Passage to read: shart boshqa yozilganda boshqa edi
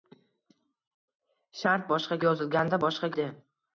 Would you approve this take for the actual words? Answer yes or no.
yes